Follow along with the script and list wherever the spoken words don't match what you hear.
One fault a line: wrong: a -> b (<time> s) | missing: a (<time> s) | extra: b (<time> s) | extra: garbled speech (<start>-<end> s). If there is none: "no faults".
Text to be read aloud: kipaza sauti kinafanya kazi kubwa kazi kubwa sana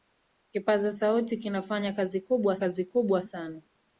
no faults